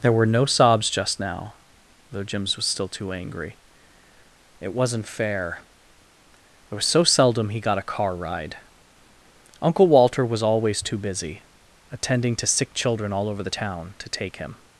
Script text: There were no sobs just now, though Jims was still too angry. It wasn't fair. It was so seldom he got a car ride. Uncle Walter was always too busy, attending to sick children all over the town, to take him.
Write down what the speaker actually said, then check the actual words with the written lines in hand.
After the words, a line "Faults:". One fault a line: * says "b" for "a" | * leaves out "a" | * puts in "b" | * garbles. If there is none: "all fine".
There were no sobs just now, though Jims was still too angry. It wasn't fair. It was so seldom he got a car ride. Uncle Walter was always too busy, attending to sick children all over the town, to take him.
Faults:
all fine